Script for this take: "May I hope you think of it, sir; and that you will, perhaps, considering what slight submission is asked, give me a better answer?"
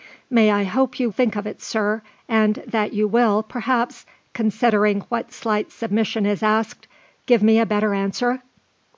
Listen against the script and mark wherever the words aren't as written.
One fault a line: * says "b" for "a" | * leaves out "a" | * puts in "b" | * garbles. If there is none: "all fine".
all fine